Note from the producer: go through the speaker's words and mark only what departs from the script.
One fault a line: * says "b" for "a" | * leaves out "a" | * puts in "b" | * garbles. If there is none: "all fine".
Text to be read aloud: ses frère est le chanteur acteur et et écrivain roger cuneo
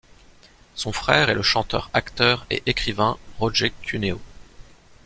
* says "son" for "ses"
* leaves out "et"